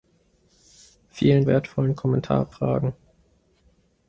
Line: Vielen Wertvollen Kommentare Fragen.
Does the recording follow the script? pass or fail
pass